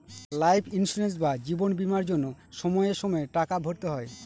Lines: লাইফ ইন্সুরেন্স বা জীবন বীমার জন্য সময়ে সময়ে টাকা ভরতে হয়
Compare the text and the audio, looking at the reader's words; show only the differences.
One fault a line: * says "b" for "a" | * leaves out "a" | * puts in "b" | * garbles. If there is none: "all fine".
all fine